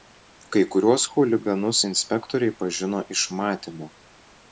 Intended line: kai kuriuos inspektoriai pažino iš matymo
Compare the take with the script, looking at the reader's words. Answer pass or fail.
fail